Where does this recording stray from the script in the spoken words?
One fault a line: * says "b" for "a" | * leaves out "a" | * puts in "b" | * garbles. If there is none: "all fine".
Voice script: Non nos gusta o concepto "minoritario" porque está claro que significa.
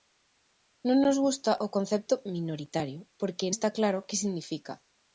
all fine